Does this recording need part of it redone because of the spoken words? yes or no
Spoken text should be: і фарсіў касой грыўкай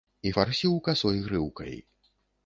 no